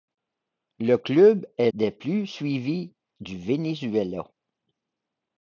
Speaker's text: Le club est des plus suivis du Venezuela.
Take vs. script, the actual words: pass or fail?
pass